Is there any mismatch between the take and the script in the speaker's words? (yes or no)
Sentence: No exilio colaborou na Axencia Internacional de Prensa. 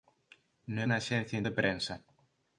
yes